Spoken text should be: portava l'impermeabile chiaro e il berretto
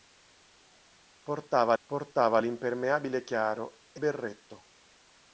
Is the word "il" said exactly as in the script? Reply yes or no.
no